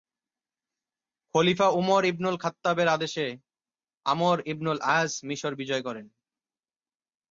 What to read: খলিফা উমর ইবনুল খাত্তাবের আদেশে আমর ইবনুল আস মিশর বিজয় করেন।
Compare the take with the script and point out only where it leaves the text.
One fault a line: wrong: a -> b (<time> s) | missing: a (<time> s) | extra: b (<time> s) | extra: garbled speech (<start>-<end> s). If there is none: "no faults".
no faults